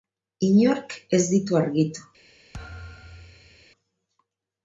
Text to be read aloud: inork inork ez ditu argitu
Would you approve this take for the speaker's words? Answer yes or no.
no